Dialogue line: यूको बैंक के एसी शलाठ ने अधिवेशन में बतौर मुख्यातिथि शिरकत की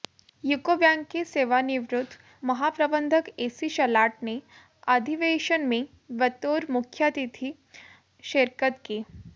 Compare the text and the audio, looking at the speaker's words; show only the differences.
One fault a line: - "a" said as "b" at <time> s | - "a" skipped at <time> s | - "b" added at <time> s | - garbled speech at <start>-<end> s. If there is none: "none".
- "सेवानिवृत्त महाप्रबंधक" added at 1.2 s